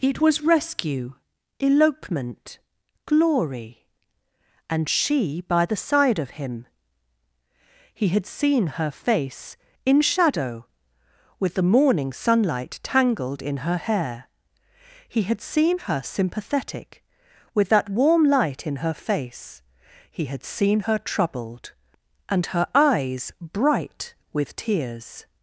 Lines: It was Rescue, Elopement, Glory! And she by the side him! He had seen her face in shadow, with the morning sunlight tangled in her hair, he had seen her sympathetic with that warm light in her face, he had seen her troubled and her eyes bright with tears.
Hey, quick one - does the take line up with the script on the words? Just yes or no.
no